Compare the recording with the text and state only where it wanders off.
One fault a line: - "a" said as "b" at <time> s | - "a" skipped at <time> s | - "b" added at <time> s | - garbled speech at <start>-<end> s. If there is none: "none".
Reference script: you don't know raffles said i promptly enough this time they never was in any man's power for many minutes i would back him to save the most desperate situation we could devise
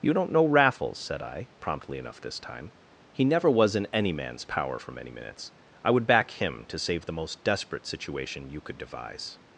- "they" said as "he" at 3.1 s
- "we" said as "you" at 8.5 s